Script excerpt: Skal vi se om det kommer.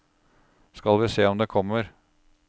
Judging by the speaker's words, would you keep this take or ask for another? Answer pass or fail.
pass